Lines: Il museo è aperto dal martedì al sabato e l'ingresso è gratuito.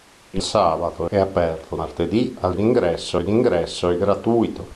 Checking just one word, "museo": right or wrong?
wrong